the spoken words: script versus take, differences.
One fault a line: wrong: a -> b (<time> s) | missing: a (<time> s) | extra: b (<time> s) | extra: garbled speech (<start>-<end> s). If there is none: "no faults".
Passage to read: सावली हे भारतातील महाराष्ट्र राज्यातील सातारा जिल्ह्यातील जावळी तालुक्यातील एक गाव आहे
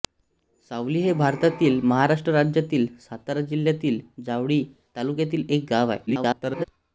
extra: garbled speech (6.1-6.6 s)